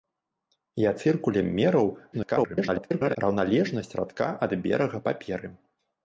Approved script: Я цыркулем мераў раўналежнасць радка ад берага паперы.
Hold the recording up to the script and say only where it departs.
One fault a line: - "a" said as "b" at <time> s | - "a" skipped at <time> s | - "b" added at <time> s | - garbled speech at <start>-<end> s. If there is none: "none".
- garbled speech at 2.1-3.2 s